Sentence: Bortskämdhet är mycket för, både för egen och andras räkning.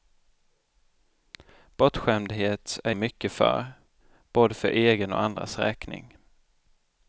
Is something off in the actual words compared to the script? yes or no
no